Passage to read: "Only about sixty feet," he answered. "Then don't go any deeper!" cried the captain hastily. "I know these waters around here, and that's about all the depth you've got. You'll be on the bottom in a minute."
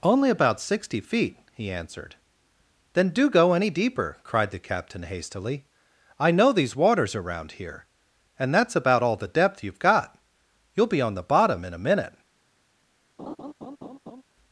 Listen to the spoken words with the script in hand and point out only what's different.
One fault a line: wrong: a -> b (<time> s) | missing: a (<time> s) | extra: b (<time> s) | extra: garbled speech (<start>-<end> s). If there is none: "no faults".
wrong: don't -> do (3.1 s)